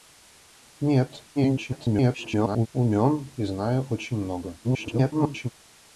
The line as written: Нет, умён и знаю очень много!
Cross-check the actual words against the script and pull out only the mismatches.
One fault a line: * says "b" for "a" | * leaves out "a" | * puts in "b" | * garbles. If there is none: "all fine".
* garbles
* garbles